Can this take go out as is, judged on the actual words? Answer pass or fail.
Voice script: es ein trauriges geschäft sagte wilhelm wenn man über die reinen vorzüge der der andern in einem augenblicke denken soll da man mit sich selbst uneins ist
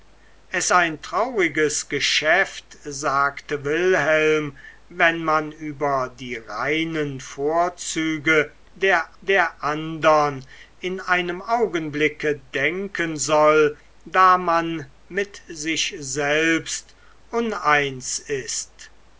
pass